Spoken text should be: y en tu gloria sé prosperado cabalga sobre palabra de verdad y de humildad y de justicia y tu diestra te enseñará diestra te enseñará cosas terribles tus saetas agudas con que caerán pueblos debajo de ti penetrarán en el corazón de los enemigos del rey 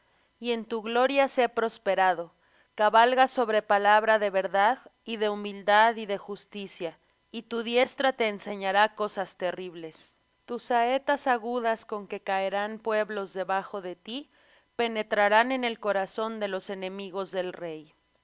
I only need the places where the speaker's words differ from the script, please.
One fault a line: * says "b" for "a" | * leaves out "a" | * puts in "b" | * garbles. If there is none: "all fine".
* leaves out "diestra te enseñará"